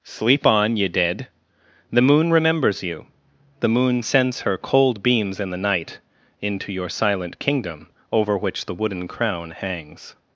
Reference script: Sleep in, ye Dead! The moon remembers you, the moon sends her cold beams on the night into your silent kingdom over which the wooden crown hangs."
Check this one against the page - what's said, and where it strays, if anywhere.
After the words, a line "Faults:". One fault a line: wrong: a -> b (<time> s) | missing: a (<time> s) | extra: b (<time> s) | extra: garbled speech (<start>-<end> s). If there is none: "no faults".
Sleep on, ye Dead! The moon remembers you, the moon sends her cold beams in the night into your silent kingdom over which the wooden crown hangs."
Faults:
wrong: in -> on (0.5 s)
wrong: on -> in (5.4 s)